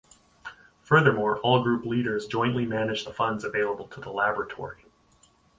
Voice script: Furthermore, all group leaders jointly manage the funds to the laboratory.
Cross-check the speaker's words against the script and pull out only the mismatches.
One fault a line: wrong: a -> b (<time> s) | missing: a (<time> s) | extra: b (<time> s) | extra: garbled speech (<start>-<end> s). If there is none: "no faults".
extra: available (3.4 s)